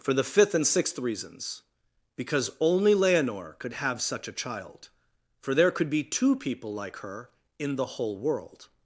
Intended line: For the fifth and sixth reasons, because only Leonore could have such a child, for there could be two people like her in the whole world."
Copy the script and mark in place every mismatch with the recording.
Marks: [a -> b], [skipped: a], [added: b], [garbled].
For the fifth and sixth reasons, because only Leonore could have such a child, for there could be two people like her in the whole world."